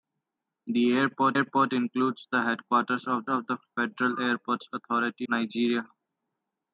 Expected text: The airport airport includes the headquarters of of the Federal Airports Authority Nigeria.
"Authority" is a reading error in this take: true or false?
false